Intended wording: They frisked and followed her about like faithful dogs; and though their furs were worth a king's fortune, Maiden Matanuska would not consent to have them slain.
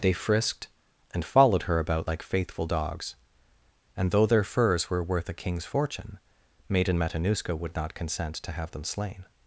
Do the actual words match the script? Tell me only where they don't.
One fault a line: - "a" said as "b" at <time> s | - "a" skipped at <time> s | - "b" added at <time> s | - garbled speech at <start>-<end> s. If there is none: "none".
none